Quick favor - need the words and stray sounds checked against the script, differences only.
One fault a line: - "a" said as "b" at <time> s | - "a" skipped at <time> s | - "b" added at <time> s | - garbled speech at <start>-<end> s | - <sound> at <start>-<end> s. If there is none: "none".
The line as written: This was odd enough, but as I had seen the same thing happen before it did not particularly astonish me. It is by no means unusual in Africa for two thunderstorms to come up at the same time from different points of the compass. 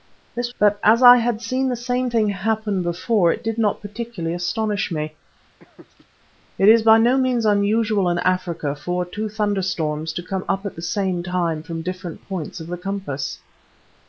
- "was odd enough" skipped at 0.5 s
- laugh at 5.6-6.1 s